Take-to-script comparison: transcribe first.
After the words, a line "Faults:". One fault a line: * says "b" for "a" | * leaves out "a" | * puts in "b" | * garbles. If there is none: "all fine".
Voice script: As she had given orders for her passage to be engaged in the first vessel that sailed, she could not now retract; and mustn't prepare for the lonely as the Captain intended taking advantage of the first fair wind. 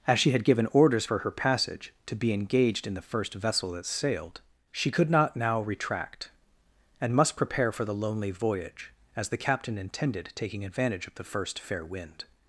As she had given orders for her passage to be engaged in the first vessel that sailed, she could not now retract; and must prepare for the lonely voyage, as the Captain intended taking advantage of the first fair wind.
Faults:
* says "must" for "mustn't"
* puts in "voyage"